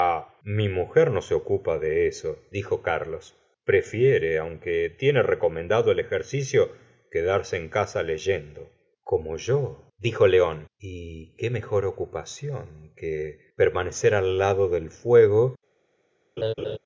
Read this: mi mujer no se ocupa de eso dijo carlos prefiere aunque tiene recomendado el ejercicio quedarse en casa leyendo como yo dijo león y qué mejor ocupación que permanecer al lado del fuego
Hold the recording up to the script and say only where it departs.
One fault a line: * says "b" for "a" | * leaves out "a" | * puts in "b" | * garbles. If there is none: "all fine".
all fine